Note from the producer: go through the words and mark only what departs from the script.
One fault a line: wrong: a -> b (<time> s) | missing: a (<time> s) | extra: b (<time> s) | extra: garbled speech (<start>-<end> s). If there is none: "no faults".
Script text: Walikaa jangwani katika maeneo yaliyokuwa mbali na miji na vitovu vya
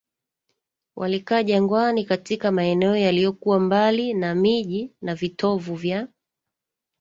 no faults